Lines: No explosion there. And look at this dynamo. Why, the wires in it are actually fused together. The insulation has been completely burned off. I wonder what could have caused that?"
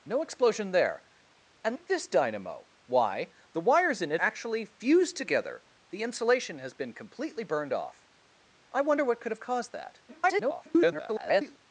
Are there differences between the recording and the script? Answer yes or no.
yes